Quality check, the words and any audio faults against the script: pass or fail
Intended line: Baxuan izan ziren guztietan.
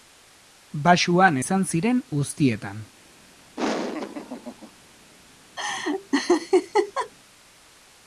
fail